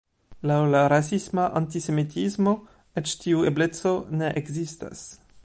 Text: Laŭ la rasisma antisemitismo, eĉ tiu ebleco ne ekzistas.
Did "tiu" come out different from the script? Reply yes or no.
no